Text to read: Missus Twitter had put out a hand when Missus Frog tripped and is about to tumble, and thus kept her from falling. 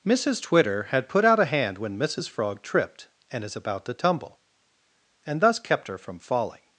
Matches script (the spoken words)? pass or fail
pass